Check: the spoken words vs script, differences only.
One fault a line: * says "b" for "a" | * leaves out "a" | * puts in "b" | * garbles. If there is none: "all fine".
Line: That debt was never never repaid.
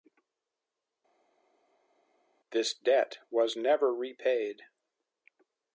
* says "This" for "That"
* leaves out "never"